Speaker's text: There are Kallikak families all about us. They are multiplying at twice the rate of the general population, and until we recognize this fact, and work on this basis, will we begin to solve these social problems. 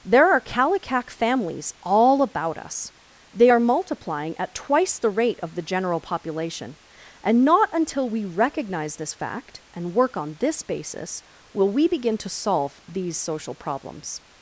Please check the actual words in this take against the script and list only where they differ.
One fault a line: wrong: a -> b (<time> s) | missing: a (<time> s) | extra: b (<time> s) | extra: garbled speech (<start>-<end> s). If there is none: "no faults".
extra: not (7.4 s)